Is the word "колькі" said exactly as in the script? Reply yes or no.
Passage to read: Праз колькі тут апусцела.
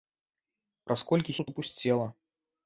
yes